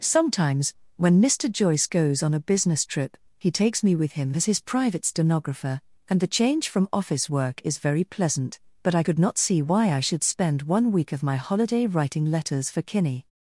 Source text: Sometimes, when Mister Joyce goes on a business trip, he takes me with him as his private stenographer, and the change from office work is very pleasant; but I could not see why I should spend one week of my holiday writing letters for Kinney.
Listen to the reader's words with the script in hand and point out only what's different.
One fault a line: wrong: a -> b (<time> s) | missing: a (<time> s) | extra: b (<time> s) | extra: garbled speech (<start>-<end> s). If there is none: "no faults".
no faults